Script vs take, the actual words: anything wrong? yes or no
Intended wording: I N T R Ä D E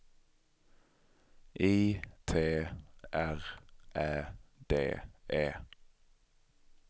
yes